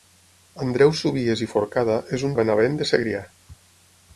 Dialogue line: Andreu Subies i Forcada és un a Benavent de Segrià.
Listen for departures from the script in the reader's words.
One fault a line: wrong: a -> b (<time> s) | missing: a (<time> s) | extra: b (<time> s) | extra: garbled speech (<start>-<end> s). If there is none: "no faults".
no faults